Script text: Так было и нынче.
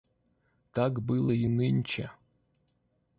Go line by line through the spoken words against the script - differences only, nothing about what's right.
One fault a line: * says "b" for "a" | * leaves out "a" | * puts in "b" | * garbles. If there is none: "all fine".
all fine